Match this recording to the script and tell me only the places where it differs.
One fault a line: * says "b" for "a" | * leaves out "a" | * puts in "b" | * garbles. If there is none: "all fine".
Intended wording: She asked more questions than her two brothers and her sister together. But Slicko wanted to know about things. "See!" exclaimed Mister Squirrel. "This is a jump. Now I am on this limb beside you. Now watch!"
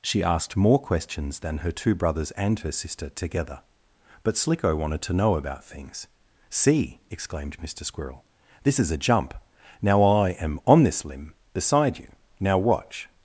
all fine